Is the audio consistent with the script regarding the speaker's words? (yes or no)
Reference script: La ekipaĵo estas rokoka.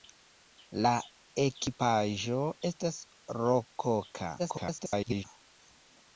no